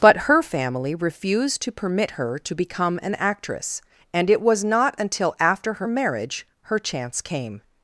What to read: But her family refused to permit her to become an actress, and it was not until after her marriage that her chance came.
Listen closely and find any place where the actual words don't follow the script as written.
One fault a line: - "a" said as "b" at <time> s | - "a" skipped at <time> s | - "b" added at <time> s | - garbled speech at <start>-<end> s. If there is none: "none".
- "that" skipped at 6.5 s